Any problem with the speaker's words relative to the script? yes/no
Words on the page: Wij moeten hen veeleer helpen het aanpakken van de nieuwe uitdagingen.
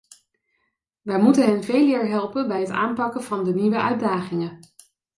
yes